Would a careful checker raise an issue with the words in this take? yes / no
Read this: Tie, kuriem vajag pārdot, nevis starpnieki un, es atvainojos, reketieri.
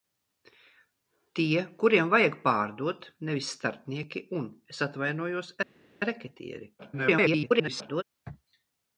yes